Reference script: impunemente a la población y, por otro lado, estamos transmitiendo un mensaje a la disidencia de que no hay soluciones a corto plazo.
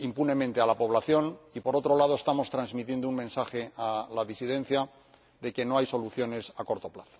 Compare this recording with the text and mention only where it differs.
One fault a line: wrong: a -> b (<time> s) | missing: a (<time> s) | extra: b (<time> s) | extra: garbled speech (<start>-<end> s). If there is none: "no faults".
no faults